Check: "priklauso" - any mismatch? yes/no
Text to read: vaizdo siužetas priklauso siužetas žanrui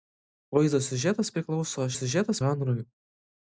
no